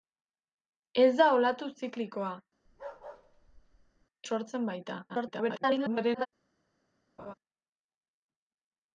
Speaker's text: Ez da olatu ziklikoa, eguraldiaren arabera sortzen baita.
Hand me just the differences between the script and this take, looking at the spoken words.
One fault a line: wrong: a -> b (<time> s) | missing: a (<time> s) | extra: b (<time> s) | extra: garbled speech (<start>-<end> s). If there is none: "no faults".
missing: eguraldiaren arabera (2.3 s)
extra: garbled speech (5.1-6.3 s)